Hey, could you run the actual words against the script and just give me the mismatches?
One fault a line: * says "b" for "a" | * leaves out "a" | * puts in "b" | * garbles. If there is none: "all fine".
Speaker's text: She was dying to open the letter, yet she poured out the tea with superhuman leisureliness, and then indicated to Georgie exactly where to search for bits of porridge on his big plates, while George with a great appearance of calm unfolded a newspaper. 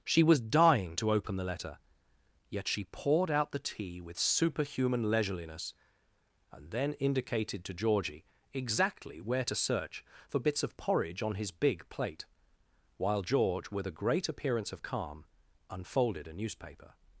* says "plate" for "plates"